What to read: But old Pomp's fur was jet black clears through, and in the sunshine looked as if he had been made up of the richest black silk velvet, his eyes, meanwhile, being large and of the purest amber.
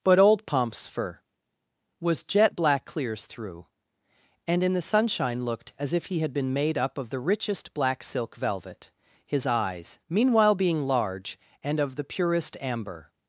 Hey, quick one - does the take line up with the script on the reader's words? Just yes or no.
yes